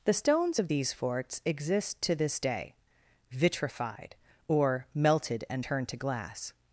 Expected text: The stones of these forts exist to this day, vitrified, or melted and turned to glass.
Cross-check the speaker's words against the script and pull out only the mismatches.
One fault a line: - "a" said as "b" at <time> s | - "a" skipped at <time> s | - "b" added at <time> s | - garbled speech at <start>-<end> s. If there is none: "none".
none